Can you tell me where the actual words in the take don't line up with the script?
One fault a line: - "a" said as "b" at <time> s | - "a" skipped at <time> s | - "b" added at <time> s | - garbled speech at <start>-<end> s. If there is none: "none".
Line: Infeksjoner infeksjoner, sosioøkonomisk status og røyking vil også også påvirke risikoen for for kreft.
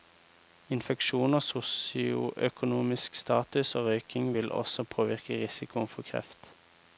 - "infeksjoner" skipped at 1.4 s
- "også" skipped at 4.8 s
- "for" skipped at 6.0 s